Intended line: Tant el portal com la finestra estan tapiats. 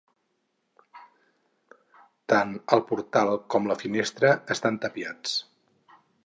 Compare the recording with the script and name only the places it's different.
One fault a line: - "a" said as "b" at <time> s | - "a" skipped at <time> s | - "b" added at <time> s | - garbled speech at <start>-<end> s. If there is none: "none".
none